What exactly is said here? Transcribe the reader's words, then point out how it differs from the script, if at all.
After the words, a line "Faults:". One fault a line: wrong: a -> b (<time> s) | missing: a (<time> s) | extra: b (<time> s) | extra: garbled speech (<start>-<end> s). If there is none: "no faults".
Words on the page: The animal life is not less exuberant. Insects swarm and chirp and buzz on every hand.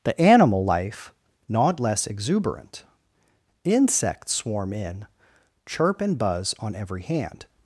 The animal life not less exuberant. Insects swarm in chirp and buzz on every hand.
Faults:
missing: is (1.1 s)
wrong: and -> in (4.7 s)